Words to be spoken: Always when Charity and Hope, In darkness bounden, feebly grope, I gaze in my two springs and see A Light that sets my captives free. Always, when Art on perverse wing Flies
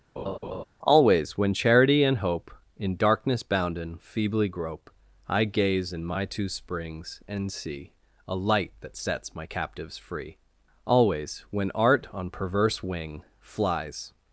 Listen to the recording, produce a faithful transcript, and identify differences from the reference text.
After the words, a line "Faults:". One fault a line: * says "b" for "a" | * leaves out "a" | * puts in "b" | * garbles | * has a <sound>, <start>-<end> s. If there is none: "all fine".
Always when Charity and Hope, In darkness bounden, feebly grope, I gaze in my two springs and see A Light that sets my captives free. Always, when Art on perverse wing Flies
Faults:
* has a laugh, 0.2-0.6 s